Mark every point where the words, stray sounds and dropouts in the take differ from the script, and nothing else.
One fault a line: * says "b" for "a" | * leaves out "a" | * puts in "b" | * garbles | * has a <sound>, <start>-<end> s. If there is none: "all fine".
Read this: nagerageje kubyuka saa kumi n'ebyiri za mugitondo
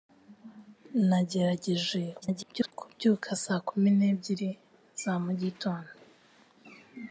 * garbles